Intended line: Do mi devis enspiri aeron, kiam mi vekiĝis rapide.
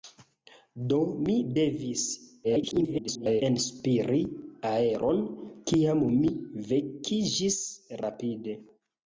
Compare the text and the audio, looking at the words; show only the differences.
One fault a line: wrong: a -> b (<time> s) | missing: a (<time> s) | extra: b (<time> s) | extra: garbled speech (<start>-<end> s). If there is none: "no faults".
extra: garbled speech (2.4-3.4 s)